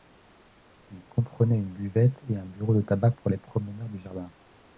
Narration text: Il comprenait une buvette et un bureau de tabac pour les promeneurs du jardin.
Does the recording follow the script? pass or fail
pass